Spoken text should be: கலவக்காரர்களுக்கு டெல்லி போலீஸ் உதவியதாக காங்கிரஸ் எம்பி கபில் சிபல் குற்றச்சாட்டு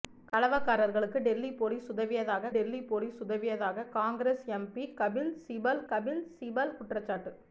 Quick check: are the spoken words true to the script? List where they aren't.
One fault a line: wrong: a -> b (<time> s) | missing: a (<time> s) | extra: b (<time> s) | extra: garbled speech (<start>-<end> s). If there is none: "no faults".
extra: டெல்லி போலீஸ் உதவியதாக (2.5 s)
extra: கபில் சிபல் (5.9 s)